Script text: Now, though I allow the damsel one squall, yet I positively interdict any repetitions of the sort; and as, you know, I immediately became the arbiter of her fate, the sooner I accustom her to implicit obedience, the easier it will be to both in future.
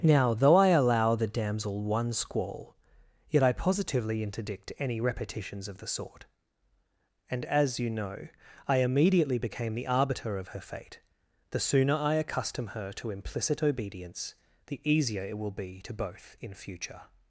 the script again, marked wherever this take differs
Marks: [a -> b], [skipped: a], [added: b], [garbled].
Now, though I allow the damsel one squall, yet I positively interdict any repetitions of the sort; and as, you know, I immediately became the arbiter of her fate, the sooner I accustom her to implicit obedience, the easier it will be to both in future.